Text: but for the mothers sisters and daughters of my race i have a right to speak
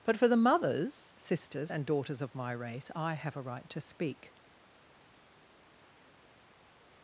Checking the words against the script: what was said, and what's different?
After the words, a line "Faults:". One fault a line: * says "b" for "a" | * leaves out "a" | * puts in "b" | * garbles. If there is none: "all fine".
but for the mothers sisters and daughters of my race i have a right to speak
Faults:
all fine